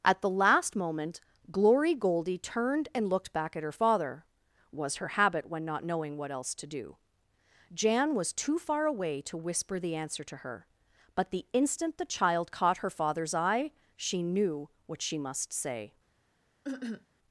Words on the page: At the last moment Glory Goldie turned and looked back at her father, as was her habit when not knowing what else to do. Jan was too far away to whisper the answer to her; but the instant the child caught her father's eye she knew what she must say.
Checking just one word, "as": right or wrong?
wrong